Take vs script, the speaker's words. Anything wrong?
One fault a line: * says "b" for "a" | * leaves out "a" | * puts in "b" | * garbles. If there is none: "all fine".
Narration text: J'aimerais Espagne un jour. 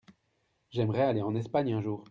* puts in "aller en"